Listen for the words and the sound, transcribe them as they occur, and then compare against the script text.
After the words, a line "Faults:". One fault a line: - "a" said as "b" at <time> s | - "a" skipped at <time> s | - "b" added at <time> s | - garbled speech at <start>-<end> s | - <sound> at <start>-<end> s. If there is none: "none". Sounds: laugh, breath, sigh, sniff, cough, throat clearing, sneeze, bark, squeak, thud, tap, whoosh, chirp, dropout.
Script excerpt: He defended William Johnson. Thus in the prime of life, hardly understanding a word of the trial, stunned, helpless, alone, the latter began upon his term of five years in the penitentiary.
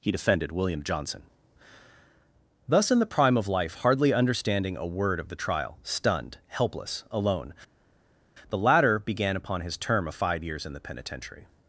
He defended William Johnson. Thus in the prime of life, hardly understanding a word of the trial, stunned, helpless, alone, the latter began upon his term of five years in the penitentiary.
Faults:
none